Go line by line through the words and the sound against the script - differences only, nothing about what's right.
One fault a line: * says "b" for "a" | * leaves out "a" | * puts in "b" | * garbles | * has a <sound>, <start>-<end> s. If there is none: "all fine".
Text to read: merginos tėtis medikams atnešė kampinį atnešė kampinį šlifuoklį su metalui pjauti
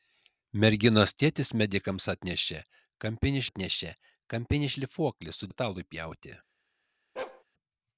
* has a bark, 7.2-7.4 s